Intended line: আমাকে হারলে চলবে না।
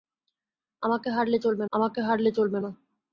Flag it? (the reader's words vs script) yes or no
yes